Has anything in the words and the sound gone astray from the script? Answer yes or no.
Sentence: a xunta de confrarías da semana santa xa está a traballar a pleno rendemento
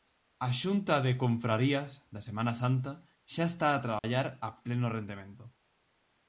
yes